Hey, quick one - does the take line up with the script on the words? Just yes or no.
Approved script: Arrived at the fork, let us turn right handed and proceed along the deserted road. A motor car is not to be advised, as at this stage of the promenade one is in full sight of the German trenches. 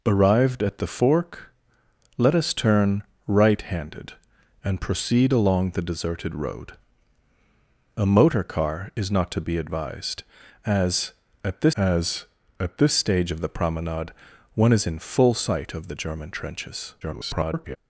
no